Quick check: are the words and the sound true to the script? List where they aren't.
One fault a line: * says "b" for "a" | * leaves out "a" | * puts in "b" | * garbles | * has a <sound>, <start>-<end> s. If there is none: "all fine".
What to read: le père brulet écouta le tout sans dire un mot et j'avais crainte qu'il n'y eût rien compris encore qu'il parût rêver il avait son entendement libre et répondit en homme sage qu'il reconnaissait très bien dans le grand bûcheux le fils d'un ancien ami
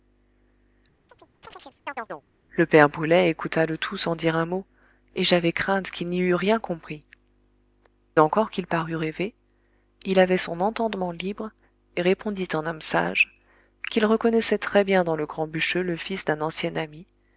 * has a chirp, 1.1-2.3 s